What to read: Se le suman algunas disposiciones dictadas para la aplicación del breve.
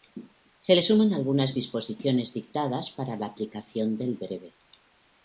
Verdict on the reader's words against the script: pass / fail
pass